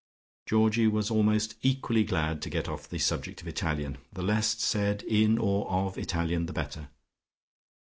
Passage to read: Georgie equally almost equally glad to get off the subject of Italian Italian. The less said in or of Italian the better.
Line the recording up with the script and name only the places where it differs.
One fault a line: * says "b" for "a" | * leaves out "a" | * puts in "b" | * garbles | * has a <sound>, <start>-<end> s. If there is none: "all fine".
* says "was" for "equally"
* leaves out "Italian"